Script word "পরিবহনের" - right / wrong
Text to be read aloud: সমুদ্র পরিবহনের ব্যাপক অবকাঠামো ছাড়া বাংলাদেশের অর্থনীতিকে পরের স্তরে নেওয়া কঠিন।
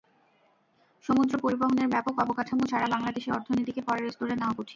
right